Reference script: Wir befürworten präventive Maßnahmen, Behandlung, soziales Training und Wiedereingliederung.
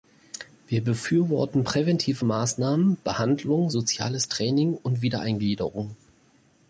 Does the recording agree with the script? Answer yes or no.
yes